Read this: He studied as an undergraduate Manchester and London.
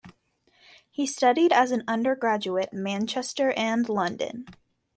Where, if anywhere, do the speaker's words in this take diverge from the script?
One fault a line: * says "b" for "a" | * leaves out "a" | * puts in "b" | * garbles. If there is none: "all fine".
all fine